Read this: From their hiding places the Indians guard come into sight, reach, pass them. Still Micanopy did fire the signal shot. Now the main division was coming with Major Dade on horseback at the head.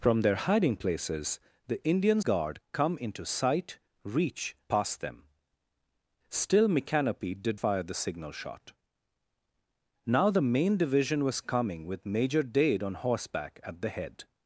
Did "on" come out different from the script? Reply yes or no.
no